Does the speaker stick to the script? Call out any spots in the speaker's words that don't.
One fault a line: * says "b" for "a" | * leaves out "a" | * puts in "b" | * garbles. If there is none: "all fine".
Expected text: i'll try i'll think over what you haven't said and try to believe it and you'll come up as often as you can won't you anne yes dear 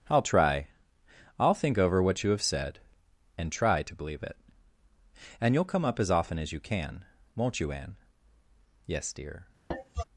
* says "have" for "haven't"